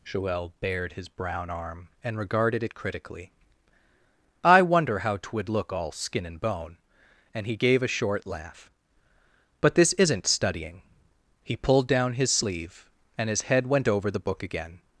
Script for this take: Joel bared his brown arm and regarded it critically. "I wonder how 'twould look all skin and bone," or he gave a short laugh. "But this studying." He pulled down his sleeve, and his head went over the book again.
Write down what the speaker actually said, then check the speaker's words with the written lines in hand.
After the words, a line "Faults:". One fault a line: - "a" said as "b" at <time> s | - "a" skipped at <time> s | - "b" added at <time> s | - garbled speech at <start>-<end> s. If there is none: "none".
Joel bared his brown arm and regarded it critically. "I wonder how 'twould look all skin and bone," and he gave a short laugh. "But this isn't studying." He pulled down his sleeve, and his head went over the book again.
Faults:
- "or" said as "and" at 7.3 s
- "isn't" added at 9.9 s